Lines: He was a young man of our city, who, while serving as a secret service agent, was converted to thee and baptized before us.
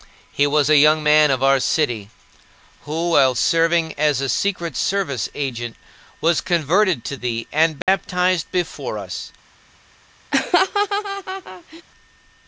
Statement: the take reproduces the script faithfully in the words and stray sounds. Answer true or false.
false